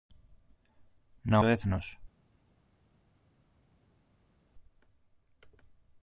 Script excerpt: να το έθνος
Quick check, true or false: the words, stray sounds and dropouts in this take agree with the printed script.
true